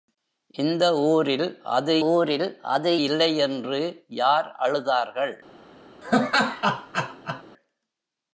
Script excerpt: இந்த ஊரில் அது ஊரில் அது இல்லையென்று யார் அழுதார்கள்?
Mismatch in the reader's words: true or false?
false